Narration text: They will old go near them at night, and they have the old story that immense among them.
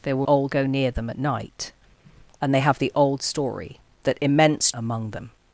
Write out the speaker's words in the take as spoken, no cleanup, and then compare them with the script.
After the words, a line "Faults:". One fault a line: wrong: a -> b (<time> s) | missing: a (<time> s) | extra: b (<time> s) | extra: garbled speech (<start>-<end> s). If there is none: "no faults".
They will old go near them at night, and they have the old story that immense among them.
Faults:
no faults